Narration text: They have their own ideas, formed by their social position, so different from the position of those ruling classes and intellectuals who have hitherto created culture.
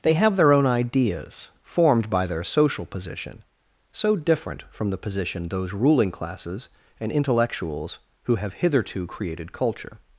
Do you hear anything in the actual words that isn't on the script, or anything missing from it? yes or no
yes